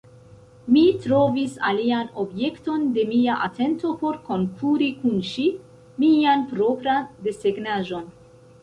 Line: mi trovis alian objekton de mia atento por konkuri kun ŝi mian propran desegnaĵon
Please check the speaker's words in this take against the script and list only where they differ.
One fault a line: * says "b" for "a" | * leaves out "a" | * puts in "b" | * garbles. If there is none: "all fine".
all fine